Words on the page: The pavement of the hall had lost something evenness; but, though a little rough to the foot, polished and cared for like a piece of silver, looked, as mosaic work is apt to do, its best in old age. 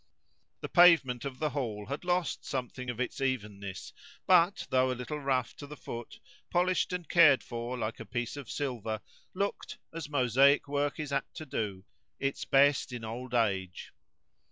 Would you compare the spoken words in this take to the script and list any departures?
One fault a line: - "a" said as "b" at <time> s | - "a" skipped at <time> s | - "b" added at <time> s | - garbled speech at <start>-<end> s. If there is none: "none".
- "of its" added at 2.9 s